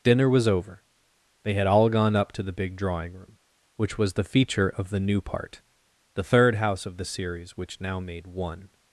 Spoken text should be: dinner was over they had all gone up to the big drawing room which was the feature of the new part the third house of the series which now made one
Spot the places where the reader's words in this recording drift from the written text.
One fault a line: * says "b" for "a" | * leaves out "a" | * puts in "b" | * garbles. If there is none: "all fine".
all fine